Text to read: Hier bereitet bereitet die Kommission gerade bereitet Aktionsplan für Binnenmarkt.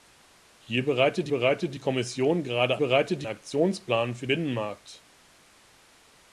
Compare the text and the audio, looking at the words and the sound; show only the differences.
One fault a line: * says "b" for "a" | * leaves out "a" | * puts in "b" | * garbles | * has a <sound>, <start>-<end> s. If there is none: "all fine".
all fine